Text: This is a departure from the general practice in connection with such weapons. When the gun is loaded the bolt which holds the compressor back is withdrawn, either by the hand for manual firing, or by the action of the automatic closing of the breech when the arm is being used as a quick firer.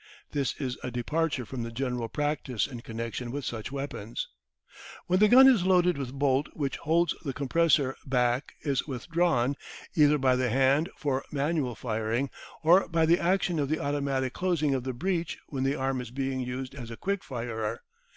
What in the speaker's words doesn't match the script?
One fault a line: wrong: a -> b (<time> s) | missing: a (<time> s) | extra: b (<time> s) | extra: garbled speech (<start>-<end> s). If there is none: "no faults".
no faults